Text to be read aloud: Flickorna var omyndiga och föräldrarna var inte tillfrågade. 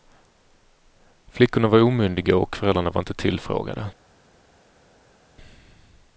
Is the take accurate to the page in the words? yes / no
yes